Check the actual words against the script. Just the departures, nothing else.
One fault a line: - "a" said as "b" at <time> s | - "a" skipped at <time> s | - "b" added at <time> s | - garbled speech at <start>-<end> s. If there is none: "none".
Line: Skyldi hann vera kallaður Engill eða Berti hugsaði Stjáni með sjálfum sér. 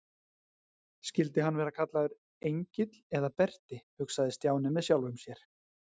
none